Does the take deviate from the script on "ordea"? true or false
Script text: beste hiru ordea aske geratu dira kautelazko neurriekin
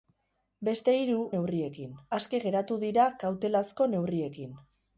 true